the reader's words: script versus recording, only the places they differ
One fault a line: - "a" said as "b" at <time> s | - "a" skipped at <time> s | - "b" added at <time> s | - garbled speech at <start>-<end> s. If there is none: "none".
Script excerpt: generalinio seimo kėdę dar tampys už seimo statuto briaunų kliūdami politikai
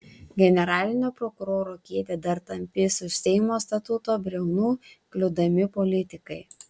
- "seimo" said as "prokuroro" at 1.2 s